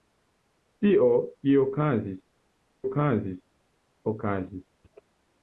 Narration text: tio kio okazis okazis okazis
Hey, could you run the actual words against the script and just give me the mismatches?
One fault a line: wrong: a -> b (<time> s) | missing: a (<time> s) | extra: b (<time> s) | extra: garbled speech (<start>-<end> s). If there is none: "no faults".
no faults